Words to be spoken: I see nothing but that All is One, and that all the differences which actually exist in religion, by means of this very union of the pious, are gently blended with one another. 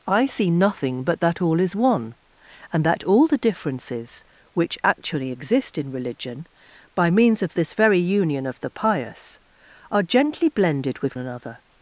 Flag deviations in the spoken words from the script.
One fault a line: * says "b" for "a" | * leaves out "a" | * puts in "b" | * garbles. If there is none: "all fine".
* leaves out "one"